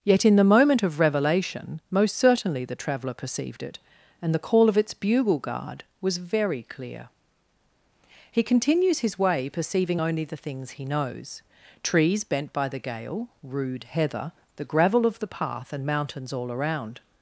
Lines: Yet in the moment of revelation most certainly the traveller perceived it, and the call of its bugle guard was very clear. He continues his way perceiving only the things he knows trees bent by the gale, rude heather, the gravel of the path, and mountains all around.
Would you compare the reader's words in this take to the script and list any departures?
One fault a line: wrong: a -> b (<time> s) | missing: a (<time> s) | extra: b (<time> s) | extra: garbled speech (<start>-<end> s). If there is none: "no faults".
no faults